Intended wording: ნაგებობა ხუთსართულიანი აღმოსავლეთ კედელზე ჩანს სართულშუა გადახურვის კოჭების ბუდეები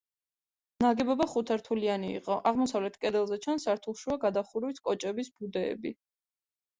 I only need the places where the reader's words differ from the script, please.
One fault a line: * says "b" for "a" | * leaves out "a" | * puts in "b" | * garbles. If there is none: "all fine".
* puts in "იყო"